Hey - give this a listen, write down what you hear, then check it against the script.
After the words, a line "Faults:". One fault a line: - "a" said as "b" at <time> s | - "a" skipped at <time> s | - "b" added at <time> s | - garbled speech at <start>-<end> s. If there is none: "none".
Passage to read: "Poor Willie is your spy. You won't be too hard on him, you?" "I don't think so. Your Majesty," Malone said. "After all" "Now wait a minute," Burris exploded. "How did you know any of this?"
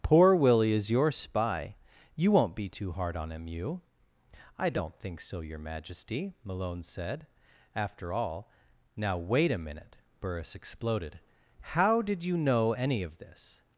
"Poor Willie is your spy. You won't be too hard on him, you?" "I don't think so. Your Majesty," Malone said. "After all" "Now wait a minute," Burris exploded. "How did you know any of this?"
Faults:
none